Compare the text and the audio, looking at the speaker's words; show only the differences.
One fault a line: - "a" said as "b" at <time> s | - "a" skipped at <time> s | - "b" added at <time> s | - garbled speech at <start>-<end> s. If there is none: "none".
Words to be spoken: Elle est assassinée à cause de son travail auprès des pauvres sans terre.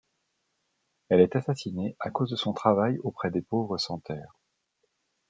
none